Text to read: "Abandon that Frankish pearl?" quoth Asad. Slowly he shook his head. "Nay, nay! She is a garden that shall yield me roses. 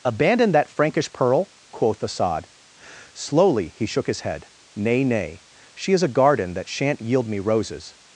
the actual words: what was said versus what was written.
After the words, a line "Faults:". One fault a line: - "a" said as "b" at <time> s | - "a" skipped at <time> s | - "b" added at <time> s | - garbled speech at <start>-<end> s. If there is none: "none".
"Abandon that Frankish pearl?" quoth Asad. Slowly he shook his head. "Nay, nay! She is a garden that shan't yield me roses.
Faults:
- "shall" said as "shan't" at 6.7 s